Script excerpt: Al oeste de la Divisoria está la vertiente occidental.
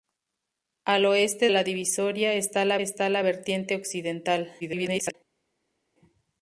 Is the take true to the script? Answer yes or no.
no